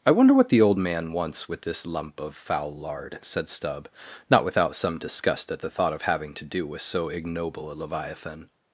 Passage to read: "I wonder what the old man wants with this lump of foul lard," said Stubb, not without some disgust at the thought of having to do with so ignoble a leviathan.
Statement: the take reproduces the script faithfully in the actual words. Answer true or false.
true